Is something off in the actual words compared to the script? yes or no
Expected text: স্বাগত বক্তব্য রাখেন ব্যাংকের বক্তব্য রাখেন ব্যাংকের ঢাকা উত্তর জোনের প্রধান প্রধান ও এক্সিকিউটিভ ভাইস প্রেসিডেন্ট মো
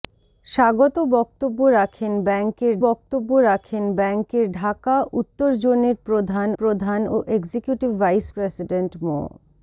no